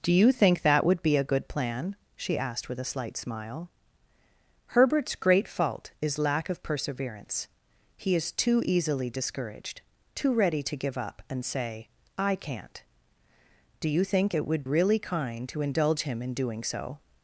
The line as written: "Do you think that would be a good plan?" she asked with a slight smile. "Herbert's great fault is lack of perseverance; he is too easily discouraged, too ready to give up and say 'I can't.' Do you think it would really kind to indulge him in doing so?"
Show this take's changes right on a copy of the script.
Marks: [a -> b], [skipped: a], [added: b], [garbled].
"Do you think that would be a good plan?" she asked with a slight smile. "Herbert's great fault is lack of perseverance; he is too easily discouraged, too ready to give up and say 'I can't.' Do you think it would really kind to indulge him in doing so?"